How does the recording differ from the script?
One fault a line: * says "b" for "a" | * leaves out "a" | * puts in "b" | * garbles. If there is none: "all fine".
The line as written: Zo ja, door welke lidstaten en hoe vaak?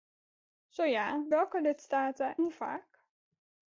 * leaves out "door"
* leaves out "en"